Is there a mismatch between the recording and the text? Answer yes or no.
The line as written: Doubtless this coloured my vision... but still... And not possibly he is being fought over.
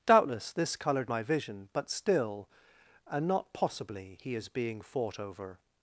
no